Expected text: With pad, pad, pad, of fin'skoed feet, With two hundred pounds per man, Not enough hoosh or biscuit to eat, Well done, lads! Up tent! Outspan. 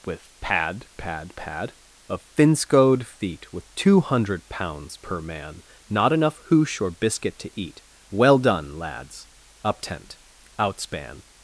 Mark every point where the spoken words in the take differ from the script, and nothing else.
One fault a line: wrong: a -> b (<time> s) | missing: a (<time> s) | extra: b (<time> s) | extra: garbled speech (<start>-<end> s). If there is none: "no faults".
no faults